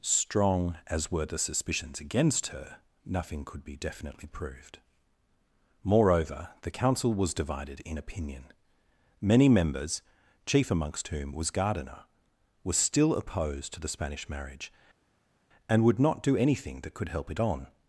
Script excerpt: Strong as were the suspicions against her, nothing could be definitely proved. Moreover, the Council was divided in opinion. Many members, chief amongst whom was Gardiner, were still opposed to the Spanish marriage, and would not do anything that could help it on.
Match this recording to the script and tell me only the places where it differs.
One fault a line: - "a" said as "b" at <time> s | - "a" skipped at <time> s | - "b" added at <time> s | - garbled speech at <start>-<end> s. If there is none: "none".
none